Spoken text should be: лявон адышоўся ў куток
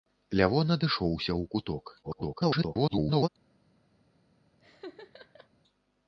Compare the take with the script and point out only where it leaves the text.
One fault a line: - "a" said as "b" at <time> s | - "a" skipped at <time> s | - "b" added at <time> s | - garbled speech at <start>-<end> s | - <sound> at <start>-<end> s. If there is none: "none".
- garbled speech at 2.0-3.3 s
- laugh at 4.6-5.5 s